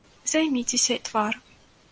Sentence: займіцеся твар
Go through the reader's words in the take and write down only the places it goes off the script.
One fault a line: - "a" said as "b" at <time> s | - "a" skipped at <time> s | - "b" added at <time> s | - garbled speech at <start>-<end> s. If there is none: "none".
none